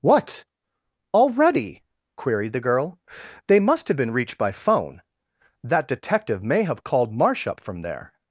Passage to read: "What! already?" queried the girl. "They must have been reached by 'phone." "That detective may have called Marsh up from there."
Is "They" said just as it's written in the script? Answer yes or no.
yes